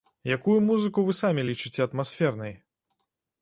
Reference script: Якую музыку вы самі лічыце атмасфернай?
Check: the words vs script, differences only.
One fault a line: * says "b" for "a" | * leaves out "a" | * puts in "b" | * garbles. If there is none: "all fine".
all fine